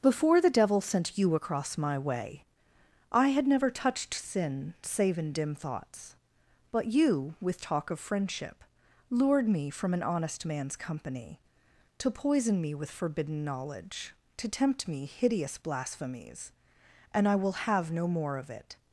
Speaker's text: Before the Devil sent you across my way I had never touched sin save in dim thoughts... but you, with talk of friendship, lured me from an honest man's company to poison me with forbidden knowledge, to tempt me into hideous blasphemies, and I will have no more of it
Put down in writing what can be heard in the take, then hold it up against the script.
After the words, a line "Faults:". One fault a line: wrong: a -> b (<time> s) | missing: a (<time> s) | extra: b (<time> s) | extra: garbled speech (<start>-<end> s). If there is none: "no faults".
Before the Devil sent you across my way I had never touched sin save in dim thoughts... but you, with talk of friendship, lured me from an honest man's company to poison me with forbidden knowledge, to tempt me hideous blasphemies, and I will have no more of it
Faults:
missing: into (15.0 s)